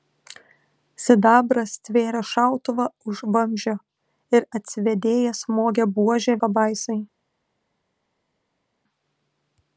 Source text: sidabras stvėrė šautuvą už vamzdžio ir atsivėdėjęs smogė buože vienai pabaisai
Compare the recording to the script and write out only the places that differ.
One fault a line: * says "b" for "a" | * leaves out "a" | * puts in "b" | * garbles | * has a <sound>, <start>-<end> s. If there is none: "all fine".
* leaves out "vienai"